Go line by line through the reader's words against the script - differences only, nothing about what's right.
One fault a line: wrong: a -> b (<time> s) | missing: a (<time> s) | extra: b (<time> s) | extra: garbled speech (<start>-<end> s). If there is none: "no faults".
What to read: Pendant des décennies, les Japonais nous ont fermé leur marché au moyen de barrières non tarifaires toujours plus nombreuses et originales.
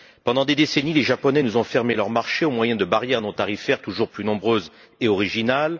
no faults